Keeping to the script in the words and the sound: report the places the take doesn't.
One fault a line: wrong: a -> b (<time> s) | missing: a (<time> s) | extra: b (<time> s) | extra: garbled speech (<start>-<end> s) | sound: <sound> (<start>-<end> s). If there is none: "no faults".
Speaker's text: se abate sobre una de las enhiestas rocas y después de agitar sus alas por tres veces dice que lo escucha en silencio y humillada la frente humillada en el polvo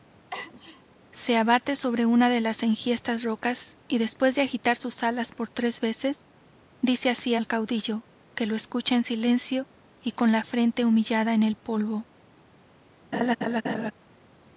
sound: sneeze (0.3-0.8 s)
extra: así al caudillo (7.1 s)
wrong: humillada -> con (10.1 s)
sound: laugh (13.1-13.9 s)